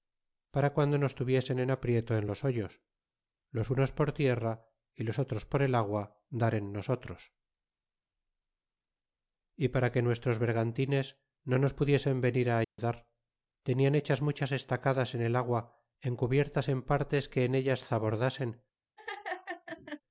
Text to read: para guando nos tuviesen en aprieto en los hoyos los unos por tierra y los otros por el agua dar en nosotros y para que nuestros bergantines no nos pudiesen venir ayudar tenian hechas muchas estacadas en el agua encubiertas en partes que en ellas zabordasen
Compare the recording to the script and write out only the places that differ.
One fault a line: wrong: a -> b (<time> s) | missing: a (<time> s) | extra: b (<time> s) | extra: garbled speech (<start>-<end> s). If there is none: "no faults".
no faults